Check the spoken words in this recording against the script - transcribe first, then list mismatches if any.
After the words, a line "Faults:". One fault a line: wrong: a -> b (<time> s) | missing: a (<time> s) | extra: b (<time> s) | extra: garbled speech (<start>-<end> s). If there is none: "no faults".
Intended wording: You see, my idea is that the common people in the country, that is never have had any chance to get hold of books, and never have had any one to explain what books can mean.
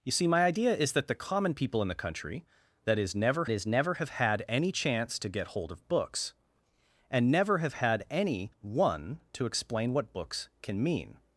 You see, my idea is that the common people in the country, that is never is never have had any chance to get hold of books, and never have had any one to explain what books can mean.
Faults:
extra: is never (3.5 s)